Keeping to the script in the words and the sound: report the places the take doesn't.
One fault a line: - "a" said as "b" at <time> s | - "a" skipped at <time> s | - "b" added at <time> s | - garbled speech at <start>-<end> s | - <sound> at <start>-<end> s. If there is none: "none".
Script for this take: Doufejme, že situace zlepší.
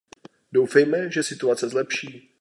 none